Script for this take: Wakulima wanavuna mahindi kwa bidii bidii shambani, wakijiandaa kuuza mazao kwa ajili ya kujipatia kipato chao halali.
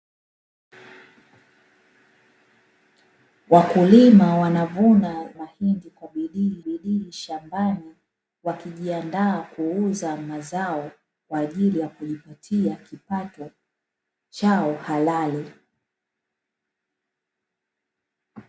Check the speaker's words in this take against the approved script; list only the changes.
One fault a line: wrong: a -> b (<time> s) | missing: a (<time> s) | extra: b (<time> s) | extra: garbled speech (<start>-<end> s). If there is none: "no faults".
no faults